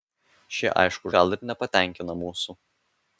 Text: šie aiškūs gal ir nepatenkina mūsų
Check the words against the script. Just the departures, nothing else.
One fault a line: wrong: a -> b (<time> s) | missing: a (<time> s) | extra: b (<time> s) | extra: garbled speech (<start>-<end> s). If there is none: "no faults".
no faults